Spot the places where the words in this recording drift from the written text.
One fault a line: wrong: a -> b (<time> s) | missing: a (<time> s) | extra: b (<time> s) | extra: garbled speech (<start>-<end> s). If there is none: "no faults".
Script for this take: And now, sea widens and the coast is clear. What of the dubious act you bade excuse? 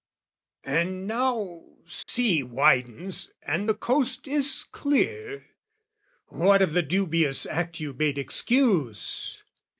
no faults